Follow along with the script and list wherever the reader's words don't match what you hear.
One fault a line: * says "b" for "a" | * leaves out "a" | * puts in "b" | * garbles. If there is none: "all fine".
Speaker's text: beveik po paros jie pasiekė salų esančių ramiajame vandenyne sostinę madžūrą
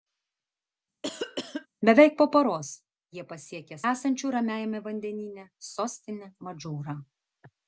* leaves out "salų"